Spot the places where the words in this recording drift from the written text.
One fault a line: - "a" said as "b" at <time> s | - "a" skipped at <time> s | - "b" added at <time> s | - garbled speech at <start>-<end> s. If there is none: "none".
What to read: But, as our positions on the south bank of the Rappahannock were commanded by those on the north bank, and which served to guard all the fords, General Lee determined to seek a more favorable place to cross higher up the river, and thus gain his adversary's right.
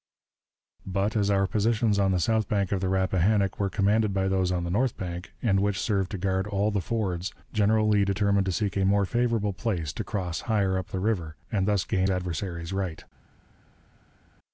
- "his" skipped at 12.1 s